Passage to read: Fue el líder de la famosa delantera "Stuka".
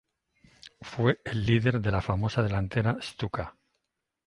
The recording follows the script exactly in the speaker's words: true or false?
true